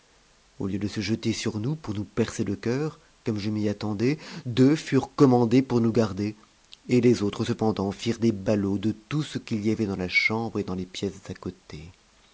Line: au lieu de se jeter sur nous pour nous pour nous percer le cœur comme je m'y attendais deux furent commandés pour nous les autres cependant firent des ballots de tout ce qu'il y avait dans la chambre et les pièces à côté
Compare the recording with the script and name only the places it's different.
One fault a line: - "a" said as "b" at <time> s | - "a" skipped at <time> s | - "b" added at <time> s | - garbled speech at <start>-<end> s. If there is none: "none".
- "pour nous" skipped at 2.0 s
- "garder et" added at 5.9 s
- "dans" added at 10.6 s